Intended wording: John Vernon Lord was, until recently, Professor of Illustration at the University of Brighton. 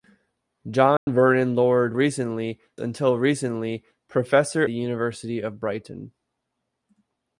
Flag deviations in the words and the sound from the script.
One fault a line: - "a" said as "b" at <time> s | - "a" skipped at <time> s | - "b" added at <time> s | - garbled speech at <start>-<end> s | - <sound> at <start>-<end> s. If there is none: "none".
- dropout at 1.0-1.1 s
- "was" said as "recently" at 1.9 s
- "of Illustration at" skipped at 4.6 s